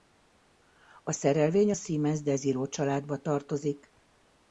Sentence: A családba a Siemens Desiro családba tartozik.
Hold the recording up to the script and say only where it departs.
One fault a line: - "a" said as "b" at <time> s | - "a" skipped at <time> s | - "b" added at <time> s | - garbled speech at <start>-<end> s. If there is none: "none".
- "családba" said as "szerelvény" at 1.1 s